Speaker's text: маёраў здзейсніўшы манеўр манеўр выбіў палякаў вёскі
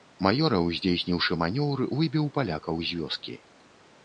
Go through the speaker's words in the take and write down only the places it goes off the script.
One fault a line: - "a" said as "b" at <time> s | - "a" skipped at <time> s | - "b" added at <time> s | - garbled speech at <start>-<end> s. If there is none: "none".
- "манеўр" skipped at 1.8 s
- "з" added at 2.9 s